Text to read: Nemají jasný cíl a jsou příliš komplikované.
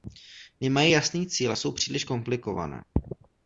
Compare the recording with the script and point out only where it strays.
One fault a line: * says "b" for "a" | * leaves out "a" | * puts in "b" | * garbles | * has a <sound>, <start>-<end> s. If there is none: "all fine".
all fine